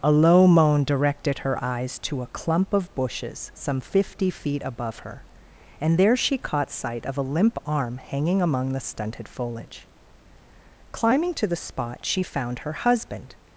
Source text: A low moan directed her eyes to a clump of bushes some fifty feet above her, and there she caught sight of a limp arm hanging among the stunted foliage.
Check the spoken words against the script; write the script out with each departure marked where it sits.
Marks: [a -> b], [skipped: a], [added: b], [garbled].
A low moan directed her eyes to a clump of bushes some fifty feet above her, and there she caught sight of a limp arm hanging among the stunted foliage. [added: Climbing to the spot she found her husband]